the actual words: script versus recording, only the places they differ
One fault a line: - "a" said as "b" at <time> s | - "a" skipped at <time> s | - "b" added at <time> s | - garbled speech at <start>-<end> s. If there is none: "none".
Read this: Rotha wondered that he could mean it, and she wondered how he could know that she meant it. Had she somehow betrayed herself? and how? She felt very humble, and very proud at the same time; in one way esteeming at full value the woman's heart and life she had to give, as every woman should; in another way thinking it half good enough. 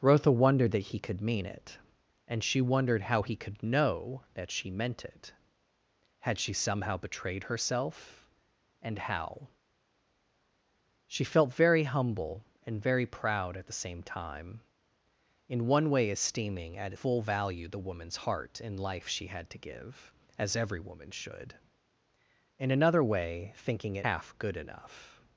none